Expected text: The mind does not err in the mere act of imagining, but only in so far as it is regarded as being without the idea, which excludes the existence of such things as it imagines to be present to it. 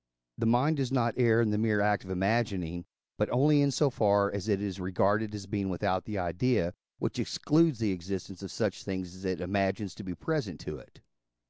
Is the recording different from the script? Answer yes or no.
no